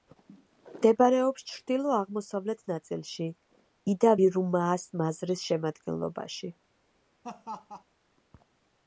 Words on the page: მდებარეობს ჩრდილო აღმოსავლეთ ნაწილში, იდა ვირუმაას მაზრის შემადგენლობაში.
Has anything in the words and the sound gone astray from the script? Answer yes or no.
yes